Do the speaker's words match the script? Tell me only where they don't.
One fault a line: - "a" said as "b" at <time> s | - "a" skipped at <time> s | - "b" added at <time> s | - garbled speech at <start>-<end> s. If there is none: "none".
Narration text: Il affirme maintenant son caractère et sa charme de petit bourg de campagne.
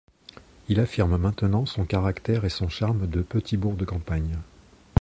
- "sa" said as "son" at 2.5 s